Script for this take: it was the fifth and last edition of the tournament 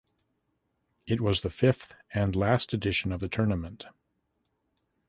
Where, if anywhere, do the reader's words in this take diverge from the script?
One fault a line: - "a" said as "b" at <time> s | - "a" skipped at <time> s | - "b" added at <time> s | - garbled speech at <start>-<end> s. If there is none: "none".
none